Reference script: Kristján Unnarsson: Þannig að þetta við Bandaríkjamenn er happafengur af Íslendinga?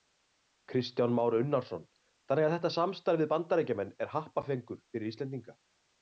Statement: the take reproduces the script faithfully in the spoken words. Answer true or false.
false